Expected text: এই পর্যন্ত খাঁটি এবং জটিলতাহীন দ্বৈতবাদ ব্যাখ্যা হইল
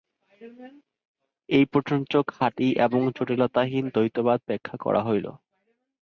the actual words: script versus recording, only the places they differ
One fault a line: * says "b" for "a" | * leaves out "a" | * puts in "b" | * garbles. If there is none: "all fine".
* puts in "করা"